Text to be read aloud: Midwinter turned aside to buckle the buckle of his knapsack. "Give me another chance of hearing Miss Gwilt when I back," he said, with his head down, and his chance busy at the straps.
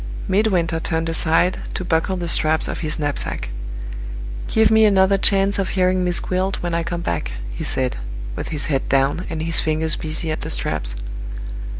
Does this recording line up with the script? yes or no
no